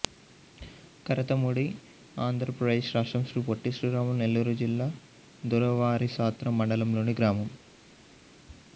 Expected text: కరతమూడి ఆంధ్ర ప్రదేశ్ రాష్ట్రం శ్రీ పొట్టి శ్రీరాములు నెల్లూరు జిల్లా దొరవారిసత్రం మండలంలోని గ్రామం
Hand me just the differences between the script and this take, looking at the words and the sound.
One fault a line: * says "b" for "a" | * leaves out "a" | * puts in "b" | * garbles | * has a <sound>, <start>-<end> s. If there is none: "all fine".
all fine